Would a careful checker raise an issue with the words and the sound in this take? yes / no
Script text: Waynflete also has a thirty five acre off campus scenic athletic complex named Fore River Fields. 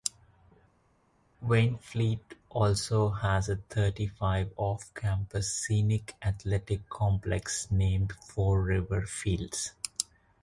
yes